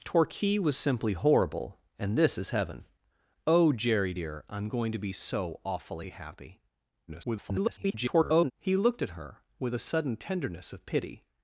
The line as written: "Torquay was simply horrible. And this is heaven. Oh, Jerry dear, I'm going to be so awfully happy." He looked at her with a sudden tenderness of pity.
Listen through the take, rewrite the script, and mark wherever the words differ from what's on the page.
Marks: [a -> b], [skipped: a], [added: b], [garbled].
"Torquay was simply horrible. And this is heaven. Oh, Jerry dear, I'm going to be so awfully happy." [garbled] He looked at her with a sudden tenderness of pity.